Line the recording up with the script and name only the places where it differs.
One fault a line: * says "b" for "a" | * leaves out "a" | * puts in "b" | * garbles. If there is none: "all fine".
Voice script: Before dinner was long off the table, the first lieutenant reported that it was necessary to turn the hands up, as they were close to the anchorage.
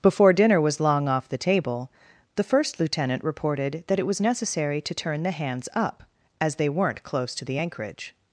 * says "weren't" for "were"